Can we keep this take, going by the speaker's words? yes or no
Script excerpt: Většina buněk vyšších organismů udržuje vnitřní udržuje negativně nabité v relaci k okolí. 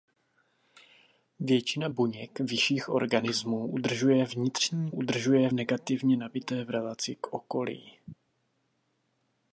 yes